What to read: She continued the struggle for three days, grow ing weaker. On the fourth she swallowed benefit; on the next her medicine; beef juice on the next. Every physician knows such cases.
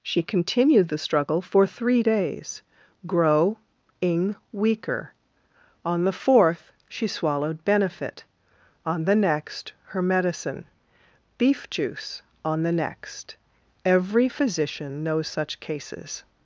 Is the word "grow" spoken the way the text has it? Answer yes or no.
yes